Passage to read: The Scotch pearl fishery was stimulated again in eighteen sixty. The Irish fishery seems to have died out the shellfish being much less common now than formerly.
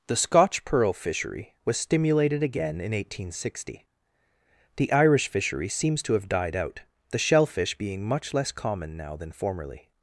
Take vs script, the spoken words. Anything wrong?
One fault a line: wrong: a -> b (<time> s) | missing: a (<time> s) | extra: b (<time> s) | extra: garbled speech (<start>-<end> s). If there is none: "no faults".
no faults